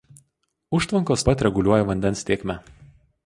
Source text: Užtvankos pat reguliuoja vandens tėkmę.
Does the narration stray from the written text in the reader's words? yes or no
no